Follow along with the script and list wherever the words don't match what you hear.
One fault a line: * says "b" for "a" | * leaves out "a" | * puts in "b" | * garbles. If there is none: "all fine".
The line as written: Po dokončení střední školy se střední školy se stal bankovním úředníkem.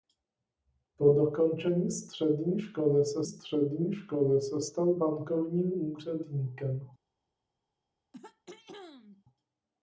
all fine